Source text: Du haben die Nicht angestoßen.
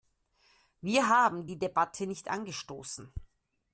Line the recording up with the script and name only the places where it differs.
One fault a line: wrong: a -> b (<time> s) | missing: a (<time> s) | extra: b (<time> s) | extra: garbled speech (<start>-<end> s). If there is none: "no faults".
wrong: Du -> Wir (0.8 s)
extra: Debatte (1.6 s)